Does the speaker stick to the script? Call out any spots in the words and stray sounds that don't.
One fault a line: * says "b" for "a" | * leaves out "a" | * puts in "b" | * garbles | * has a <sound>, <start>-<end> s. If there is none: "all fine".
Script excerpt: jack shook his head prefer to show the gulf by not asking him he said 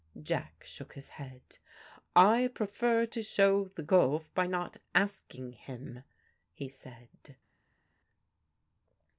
* puts in "i"